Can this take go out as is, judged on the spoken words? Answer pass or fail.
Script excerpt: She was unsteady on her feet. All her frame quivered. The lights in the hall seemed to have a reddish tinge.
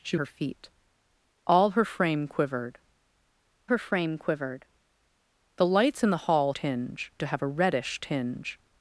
fail